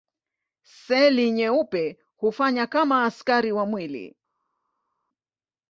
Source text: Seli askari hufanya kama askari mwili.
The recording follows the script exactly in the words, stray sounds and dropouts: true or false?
false